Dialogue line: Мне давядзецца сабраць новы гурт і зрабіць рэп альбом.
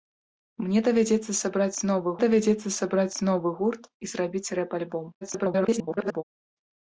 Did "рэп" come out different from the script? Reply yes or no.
no